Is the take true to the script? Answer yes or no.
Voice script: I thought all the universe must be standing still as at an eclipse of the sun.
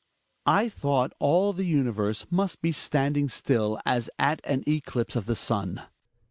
yes